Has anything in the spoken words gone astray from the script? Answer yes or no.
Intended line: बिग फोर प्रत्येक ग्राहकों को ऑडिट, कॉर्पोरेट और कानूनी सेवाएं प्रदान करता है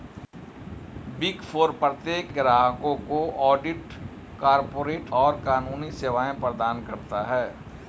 no